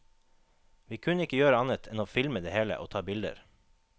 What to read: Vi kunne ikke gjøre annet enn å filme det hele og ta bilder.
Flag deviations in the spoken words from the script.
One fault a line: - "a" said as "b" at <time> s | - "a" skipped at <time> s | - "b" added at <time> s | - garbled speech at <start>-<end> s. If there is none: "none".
none